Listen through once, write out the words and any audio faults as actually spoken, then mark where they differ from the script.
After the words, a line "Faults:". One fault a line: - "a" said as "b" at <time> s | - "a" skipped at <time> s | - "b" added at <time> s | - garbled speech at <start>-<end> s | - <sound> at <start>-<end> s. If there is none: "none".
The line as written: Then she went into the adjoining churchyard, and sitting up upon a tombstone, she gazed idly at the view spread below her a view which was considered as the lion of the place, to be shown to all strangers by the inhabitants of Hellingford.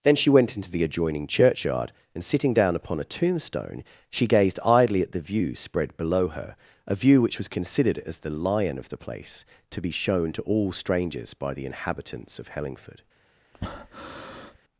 Then she went into the adjoining churchyard, and sitting down upon a tombstone, she gazed idly at the view spread below her a view which was considered as the lion of the place, to be shown to all strangers by the inhabitants of Hellingford.
Faults:
- "up" said as "down" at 2.5 s
- breath at 13.5-14.6 s